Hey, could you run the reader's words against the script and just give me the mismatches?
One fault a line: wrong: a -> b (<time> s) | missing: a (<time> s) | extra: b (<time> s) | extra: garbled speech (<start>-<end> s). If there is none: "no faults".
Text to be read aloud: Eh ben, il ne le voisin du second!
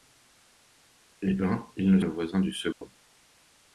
no faults